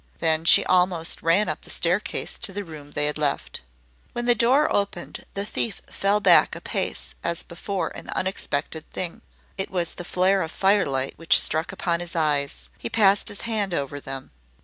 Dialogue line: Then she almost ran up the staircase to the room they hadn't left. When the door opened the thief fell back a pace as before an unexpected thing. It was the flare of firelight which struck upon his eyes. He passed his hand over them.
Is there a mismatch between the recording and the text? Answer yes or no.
yes